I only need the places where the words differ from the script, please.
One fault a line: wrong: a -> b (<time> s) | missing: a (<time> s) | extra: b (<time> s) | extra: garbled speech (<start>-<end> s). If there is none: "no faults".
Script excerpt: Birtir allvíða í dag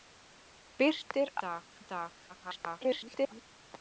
wrong: allvíða -> dag (1.5 s)
extra: garbled speech (2.3-3.4 s)